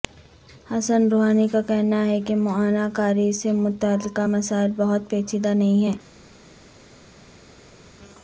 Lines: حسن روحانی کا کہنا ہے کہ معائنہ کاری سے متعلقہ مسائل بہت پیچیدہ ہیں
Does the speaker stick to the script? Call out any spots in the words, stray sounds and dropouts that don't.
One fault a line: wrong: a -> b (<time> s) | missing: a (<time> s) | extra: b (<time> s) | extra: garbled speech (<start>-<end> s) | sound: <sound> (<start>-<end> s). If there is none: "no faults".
extra: نہیں (5.5 s)